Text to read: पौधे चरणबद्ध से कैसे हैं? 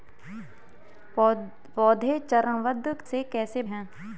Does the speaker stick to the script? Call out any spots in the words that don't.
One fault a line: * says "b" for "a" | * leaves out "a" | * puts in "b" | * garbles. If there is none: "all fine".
all fine